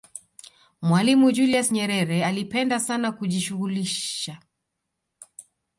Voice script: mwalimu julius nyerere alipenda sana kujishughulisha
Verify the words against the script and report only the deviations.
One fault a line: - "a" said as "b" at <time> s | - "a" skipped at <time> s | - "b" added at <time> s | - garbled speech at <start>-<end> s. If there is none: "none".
none